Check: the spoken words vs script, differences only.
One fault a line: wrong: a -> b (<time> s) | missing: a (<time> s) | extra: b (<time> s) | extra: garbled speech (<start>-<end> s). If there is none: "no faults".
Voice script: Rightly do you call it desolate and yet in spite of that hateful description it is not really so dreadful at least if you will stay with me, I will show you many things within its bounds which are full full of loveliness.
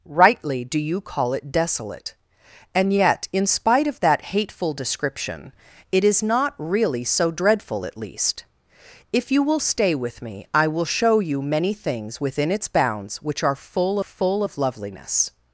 no faults